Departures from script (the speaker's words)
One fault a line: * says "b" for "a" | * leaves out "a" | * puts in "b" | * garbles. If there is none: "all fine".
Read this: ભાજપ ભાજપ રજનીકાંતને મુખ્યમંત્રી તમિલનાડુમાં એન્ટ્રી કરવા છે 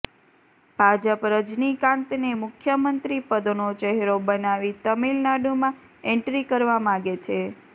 * leaves out "ભાજપ"
* puts in "પદનો ચહેરો બનાવી"
* puts in "માગે"